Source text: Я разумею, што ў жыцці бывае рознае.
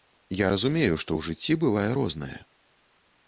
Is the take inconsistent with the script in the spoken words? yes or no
no